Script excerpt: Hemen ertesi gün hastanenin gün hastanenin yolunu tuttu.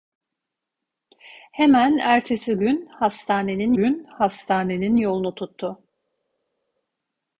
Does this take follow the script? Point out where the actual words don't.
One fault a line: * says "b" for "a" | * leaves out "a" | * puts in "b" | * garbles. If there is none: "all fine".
all fine